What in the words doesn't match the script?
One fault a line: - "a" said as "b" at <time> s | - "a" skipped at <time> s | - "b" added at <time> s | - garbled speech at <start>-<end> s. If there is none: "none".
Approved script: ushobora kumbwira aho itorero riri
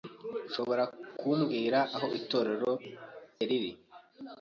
none